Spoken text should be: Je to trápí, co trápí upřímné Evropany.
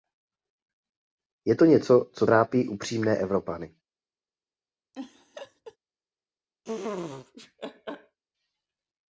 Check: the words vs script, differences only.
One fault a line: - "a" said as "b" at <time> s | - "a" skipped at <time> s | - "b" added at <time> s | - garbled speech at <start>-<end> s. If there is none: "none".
- "trápí" said as "něco" at 1.6 s